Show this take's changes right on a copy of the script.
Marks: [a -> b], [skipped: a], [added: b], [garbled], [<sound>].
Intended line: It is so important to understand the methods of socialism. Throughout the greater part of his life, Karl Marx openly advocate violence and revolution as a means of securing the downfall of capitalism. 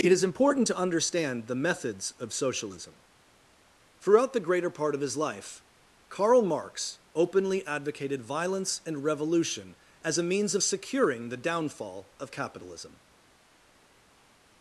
It is [skipped: so] important to understand the methods of socialism. Throughout the greater part of his life, Karl Marx openly [advocate -> advocated] violence and revolution as a means of securing the downfall of capitalism.